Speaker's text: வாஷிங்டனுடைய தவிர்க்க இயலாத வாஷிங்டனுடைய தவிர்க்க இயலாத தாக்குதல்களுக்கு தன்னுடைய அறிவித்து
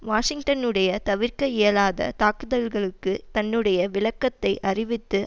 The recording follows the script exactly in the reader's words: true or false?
false